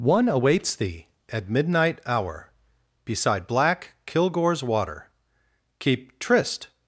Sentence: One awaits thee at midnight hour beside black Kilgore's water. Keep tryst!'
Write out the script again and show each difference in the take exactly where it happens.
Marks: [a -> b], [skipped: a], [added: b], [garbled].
One awaits thee at midnight hour beside black Kilgore's water. Keep tryst!'